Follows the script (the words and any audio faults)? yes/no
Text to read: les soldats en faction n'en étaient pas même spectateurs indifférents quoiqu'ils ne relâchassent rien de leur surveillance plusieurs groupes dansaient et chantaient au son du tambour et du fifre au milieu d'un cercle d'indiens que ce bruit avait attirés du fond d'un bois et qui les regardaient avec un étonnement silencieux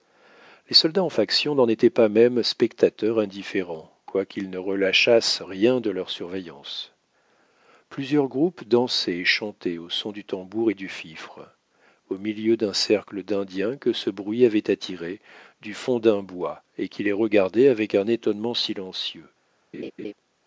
no